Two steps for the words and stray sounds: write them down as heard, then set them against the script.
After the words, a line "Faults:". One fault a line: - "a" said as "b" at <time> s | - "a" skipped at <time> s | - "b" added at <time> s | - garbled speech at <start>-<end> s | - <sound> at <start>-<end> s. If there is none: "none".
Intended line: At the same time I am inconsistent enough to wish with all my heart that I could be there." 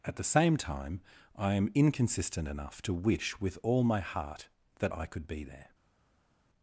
At the same time I am inconsistent enough to wish with all my heart that I could be there."
Faults:
none